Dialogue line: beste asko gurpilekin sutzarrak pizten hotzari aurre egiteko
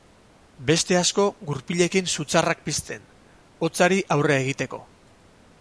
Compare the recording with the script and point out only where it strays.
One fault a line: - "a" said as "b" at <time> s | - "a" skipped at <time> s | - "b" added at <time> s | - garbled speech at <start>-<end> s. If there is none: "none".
none